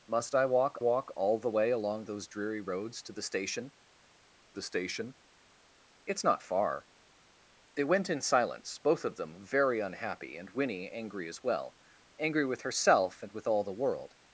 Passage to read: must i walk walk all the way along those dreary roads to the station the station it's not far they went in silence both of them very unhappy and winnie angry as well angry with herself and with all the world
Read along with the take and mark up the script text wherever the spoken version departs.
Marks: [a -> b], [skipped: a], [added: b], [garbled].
must i walk walk all the way along those dreary roads to the station the station it's not far they went in silence both of them very unhappy and winnie angry as well angry with herself and with all the world